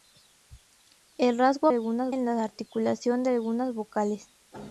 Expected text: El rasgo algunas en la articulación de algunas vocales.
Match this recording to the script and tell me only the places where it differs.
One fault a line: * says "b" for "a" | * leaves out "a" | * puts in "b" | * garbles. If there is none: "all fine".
all fine